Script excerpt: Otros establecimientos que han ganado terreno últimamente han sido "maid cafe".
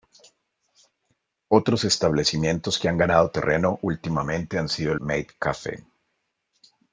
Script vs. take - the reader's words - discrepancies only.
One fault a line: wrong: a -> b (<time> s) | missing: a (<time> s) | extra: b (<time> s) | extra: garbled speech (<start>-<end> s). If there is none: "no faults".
no faults